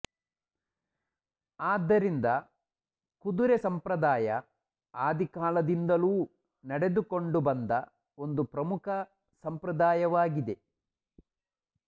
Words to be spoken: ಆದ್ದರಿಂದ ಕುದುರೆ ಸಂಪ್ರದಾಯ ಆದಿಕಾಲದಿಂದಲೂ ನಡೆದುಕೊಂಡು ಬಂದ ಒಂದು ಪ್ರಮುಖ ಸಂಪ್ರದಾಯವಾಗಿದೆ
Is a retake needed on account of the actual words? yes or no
no